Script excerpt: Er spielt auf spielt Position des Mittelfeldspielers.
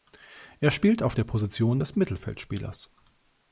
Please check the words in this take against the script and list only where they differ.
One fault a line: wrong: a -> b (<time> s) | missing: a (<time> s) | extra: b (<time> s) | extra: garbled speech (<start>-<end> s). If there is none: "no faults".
wrong: spielt -> der (1.1 s)